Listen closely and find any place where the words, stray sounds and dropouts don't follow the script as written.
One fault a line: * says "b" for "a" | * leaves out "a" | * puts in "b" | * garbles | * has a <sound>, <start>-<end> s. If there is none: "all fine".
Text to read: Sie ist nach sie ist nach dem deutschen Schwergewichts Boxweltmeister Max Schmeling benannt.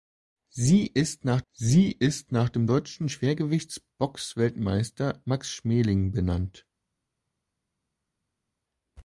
all fine